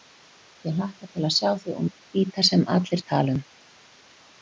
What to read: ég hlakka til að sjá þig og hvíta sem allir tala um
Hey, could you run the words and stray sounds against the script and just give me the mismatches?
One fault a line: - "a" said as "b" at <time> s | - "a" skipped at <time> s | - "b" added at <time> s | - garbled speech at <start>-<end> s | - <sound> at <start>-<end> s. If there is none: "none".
none